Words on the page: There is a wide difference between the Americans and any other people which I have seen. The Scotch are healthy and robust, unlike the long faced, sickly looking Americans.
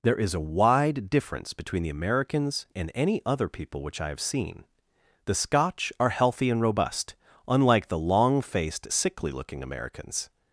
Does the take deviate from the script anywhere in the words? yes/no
no